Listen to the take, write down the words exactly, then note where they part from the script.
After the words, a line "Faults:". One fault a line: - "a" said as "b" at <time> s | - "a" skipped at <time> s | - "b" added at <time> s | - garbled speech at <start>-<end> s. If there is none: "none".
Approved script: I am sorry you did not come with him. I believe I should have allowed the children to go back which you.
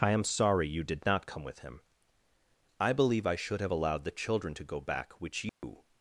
I am sorry you did not come with him. I believe I should have allowed the children to go back which you.
Faults:
none